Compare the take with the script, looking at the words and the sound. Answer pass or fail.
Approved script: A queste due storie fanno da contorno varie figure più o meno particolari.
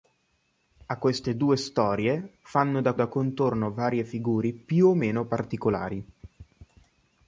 fail